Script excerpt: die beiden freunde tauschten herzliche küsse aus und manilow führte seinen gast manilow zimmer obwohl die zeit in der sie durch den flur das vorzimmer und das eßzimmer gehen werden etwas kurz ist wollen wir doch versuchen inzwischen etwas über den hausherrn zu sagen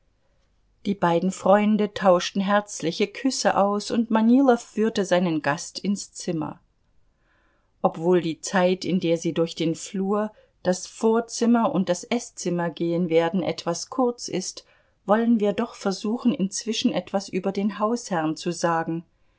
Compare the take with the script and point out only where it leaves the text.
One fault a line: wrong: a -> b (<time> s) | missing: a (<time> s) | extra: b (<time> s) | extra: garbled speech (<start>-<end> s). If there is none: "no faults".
wrong: manilow -> ins (5.8 s)